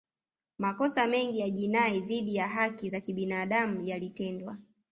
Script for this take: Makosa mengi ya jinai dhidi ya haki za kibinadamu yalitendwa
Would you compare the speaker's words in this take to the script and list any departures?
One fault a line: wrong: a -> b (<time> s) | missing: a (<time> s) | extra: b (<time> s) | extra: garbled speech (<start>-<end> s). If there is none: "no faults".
no faults